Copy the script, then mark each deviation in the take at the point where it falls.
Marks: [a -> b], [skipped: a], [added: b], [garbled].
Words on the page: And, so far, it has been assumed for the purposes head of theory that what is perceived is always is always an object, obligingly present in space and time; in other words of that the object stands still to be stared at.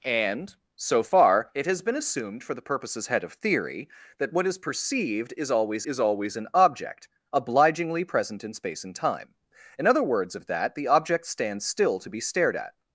And, so far, it has been assumed for the purposes head of theory that what is perceived is always is always an object, obligingly present in space and time; in other words of that the object stands still to be stared at.